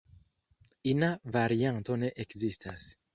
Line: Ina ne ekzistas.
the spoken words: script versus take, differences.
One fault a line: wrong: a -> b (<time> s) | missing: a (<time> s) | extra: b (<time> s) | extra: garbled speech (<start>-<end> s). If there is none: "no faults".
extra: varianto (1.3 s)